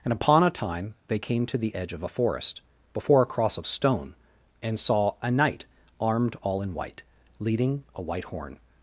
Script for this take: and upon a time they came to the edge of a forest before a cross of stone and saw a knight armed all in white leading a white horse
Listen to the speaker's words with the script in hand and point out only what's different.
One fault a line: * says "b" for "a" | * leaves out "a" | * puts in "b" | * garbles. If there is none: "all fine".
* says "horn" for "horse"